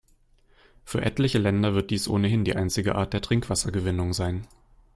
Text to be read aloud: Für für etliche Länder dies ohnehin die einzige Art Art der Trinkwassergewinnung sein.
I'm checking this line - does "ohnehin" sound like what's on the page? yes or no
yes